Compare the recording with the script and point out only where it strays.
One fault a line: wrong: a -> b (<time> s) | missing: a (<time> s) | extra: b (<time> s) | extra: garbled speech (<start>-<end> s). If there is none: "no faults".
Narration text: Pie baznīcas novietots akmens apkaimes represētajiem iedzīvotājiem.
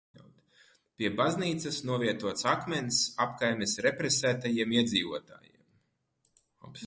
no faults